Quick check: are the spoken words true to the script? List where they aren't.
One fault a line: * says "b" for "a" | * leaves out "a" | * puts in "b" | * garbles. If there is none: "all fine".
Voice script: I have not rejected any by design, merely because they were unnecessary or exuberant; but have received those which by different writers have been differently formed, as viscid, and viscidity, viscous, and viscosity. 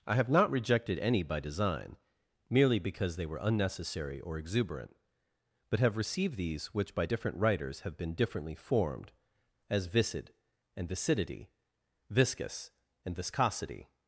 * says "these" for "those"